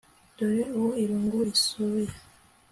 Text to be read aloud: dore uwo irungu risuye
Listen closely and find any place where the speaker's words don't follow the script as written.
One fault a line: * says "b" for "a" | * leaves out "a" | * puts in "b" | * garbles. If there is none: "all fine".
all fine